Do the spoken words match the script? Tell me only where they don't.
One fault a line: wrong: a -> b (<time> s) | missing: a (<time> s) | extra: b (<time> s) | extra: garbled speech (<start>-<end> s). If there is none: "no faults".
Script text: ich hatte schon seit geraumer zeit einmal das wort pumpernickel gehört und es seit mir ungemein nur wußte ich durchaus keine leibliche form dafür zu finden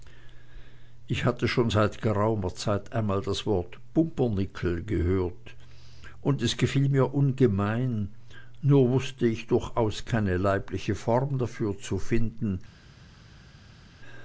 wrong: seit -> gefiel (6.6 s)